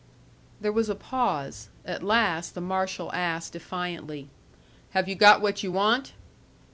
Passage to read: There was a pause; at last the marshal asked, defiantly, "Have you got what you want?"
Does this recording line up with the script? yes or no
yes